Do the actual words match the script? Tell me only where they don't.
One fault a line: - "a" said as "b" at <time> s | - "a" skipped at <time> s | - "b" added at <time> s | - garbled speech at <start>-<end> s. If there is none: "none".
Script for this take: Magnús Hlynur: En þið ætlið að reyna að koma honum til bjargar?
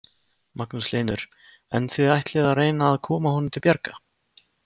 none